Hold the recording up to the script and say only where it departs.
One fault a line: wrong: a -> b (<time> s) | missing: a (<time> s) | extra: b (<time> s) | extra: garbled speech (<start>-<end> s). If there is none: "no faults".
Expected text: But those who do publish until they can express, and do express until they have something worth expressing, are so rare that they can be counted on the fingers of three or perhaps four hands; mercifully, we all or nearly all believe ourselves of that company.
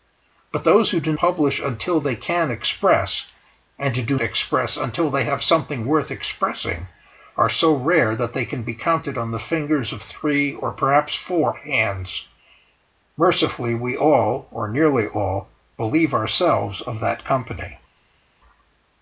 no faults